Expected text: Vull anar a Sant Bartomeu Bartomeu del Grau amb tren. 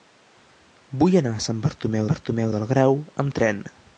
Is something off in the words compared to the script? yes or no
no